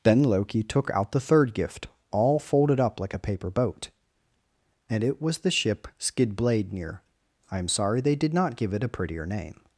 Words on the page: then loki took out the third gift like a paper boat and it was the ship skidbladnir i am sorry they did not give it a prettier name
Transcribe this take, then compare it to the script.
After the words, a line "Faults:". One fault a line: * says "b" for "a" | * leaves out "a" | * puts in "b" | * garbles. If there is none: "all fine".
then loki took out the third gift all folded up like a paper boat and it was the ship skidbladnir i am sorry they did not give it a prettier name
Faults:
* puts in "all folded up"